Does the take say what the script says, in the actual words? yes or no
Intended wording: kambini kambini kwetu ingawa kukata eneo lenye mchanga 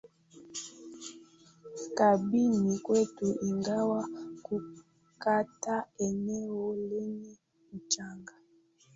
no